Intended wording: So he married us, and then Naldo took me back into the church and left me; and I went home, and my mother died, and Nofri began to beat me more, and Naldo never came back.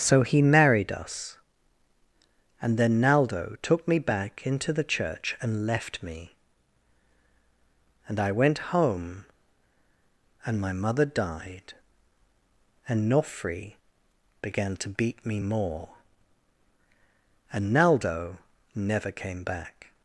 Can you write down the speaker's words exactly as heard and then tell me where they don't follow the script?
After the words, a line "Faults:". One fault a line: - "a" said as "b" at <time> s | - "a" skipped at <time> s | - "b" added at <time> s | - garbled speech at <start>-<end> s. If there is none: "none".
So he married us, and then Naldo took me back into the church and left me; and I went home, and my mother died, and Nofri began to beat me more, and Naldo never came back.
Faults:
none